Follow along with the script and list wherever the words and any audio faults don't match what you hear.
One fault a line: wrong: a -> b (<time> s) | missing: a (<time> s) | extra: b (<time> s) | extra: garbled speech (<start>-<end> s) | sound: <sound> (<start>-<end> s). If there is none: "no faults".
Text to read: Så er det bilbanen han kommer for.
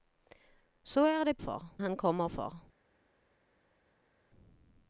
wrong: bilbanen -> for (1.4 s)